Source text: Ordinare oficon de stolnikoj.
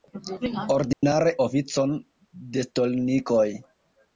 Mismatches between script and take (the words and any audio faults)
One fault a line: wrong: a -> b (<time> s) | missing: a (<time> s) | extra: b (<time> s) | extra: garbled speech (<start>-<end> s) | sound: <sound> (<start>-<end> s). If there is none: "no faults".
sound: dropout (0.9-1.0 s)